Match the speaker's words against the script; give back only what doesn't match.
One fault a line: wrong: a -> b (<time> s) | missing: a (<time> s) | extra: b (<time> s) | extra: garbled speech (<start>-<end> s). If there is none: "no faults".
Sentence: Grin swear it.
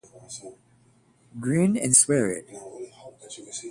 extra: and (1.8 s)